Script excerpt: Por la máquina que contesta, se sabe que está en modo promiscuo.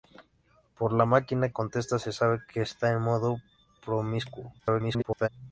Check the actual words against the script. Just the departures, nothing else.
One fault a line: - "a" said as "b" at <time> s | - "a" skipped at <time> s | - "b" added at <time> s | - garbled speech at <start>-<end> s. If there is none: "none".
- "que" skipped at 1.5 s
- garbled speech at 4.6-5.3 s